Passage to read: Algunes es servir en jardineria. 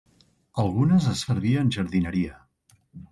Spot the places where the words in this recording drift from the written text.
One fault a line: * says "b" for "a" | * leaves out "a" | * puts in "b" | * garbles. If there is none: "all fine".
all fine